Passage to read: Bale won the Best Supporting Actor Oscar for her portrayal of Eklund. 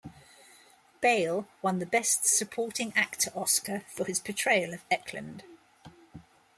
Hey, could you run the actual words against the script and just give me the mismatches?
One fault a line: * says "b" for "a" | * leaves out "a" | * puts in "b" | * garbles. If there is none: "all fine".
* says "his" for "her"